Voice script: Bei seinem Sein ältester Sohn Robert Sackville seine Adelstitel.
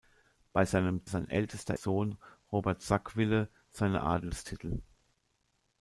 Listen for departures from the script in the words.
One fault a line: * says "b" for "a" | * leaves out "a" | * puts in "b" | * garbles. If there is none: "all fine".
all fine